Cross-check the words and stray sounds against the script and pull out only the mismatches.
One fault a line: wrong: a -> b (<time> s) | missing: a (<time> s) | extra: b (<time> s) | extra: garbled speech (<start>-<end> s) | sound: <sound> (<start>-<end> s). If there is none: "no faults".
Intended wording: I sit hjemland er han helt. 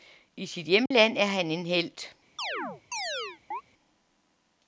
sound: dropout (0.9-0.9 s)
extra: en (1.5 s)
sound: chirp (2.4-3.6 s)